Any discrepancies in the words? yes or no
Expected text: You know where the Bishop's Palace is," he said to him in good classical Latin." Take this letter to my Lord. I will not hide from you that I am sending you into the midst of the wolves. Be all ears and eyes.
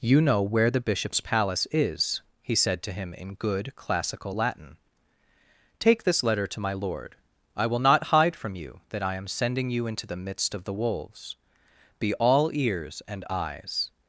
no